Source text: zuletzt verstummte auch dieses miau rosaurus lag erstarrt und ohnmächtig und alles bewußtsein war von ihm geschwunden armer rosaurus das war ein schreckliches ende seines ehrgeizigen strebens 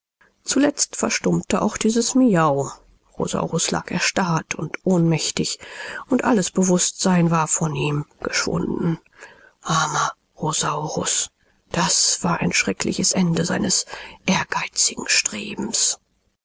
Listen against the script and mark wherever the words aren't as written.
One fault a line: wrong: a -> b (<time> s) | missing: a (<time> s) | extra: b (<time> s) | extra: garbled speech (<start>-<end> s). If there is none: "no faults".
no faults